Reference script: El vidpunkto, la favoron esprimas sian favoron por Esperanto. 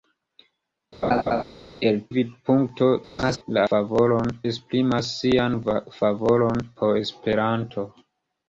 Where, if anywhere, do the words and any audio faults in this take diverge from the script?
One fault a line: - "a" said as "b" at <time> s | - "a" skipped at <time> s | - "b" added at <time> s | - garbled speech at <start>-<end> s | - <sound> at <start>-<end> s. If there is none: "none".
- laugh at 1.0-1.4 s
- laugh at 3.2-3.4 s